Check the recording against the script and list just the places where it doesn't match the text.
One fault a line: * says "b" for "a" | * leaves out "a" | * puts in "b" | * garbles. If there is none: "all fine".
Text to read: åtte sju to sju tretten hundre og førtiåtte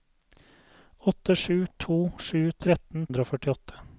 all fine